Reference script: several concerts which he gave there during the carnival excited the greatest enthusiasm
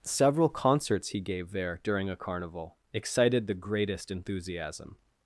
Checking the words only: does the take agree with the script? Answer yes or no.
no